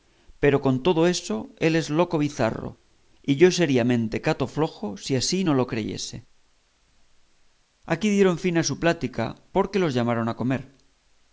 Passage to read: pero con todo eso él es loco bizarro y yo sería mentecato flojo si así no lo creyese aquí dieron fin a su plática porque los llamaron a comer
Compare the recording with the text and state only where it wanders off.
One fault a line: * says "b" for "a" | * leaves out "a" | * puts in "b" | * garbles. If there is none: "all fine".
all fine